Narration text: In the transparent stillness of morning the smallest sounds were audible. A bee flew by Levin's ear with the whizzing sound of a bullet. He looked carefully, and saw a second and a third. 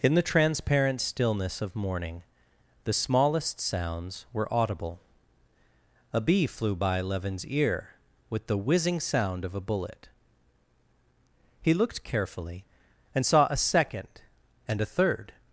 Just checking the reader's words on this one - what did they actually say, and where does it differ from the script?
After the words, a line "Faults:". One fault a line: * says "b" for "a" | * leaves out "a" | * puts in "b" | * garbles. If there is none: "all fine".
In the transparent stillness of morning the smallest sounds were audible. A bee flew by Levin's ear with the whizzing sound of a bullet. He looked carefully, and saw a second and a third.
Faults:
all fine